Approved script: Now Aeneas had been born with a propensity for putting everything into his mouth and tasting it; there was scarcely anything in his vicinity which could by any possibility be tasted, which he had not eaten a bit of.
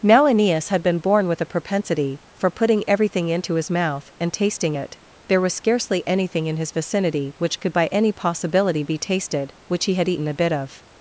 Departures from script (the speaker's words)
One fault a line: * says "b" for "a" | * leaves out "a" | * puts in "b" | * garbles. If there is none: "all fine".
* leaves out "not"